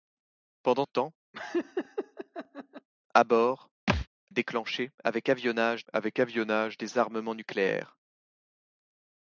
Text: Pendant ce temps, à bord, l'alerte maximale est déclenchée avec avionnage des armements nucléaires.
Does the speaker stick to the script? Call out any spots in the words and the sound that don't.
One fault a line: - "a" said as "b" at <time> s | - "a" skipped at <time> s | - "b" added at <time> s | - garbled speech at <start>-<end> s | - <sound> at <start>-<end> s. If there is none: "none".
- "ce" skipped at 0.8 s
- laugh at 1.3-2.9 s
- thud at 3.9-4.1 s
- "l'alerte maximale est déclenchée" said as "est déclenchée avec avionnage" at 4.3 s